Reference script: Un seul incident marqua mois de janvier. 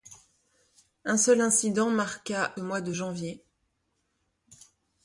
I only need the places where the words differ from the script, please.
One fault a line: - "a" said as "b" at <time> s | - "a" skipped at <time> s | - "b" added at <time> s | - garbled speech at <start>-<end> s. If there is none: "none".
none